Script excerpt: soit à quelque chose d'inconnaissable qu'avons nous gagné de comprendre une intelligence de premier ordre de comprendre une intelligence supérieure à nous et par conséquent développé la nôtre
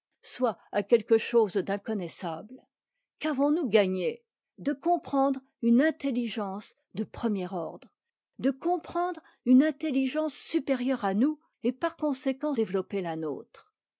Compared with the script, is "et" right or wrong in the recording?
right